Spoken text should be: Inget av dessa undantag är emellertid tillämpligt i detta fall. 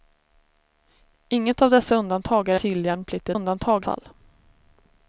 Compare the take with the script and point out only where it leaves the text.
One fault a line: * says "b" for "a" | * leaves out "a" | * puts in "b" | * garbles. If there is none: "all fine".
* leaves out "emellertid"
* says "undantag" for "detta"